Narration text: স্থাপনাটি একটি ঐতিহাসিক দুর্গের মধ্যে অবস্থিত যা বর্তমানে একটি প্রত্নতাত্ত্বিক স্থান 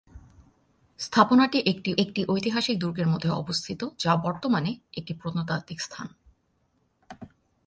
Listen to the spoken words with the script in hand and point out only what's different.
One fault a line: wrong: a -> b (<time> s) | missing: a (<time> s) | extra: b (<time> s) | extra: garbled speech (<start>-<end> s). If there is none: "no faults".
extra: একটি (2.0 s)